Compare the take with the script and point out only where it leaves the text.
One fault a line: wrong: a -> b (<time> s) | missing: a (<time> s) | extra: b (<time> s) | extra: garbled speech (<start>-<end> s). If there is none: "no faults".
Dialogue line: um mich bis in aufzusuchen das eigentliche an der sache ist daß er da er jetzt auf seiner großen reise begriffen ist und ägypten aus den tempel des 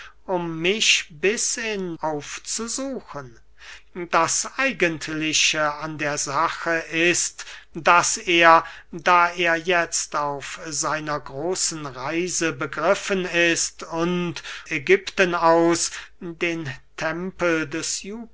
no faults